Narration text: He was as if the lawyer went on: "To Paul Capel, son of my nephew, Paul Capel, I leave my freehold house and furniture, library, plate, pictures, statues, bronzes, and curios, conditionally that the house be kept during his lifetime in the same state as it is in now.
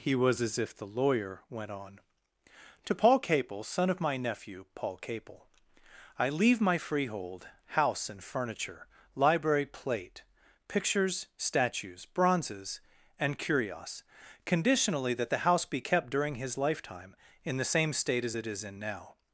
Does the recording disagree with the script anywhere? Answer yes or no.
no